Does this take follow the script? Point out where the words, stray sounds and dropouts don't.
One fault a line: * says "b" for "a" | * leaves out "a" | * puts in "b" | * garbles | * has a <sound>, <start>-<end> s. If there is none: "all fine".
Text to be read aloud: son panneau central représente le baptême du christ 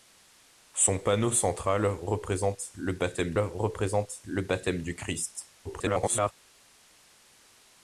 * puts in "représente le baptême"
* garbles